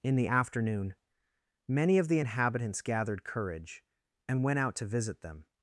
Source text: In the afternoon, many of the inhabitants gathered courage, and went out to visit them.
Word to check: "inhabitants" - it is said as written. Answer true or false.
true